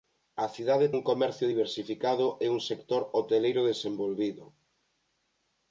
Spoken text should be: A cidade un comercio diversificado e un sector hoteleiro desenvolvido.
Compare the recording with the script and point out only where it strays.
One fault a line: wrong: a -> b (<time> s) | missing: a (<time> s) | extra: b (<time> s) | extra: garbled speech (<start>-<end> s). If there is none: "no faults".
no faults